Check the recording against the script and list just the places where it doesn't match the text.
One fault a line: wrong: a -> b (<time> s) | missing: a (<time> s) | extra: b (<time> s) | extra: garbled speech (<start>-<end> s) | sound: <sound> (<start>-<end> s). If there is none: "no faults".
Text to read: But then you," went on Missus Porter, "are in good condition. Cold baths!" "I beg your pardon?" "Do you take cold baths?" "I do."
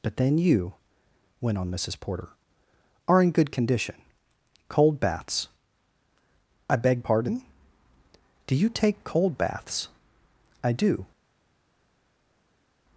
missing: your (7.0 s)